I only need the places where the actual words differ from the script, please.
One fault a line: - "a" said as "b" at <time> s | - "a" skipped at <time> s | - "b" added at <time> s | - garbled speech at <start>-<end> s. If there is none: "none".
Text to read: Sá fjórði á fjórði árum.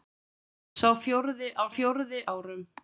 none